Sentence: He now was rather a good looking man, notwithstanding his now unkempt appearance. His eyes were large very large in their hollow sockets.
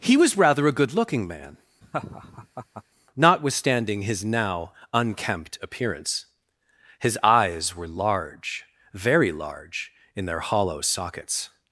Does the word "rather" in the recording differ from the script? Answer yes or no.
no